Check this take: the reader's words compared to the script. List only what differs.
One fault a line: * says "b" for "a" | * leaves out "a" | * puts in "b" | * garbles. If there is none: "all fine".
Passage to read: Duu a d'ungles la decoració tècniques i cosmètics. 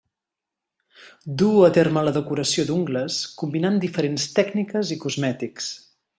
* says "terme" for "d'ungles"
* puts in "d'ungles combinant diferents"